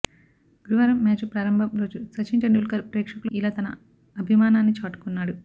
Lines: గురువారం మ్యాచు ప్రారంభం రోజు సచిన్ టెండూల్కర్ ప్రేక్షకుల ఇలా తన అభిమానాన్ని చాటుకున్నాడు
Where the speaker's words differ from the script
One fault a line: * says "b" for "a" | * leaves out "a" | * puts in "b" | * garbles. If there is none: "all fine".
all fine